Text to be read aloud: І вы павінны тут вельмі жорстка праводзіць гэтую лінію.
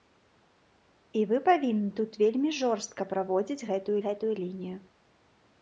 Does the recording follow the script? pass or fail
fail